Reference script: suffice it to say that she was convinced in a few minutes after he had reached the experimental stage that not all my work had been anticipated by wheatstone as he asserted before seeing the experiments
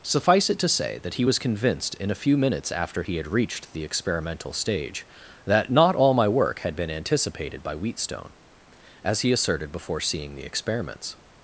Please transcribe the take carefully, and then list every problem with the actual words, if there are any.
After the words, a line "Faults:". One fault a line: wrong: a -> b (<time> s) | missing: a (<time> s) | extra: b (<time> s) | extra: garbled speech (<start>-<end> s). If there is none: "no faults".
suffice it to say that he was convinced in a few minutes after he had reached the experimental stage that not all my work had been anticipated by wheatstone as he asserted before seeing the experiments
Faults:
wrong: she -> he (1.1 s)